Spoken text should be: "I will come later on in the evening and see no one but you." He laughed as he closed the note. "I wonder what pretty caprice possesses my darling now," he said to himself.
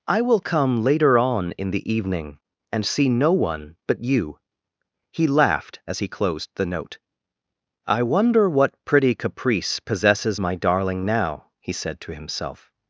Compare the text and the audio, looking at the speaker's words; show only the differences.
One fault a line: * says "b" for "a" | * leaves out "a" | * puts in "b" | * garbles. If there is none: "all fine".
all fine